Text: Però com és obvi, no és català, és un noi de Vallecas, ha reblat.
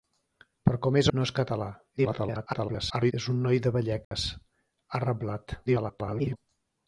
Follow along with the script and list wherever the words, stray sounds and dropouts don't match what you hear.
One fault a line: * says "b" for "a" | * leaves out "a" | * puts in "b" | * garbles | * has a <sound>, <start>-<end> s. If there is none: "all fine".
* leaves out "obvi"
* garbles
* has a dropout, 4.0-4.1 s
* garbles